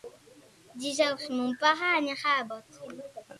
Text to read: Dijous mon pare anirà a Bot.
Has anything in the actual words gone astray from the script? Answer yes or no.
no